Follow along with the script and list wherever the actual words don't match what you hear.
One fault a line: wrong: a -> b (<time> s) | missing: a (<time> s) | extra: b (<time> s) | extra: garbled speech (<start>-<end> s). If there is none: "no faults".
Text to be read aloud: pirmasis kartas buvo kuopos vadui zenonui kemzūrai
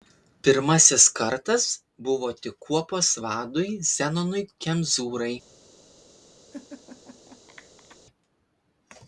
extra: tik (2.5 s)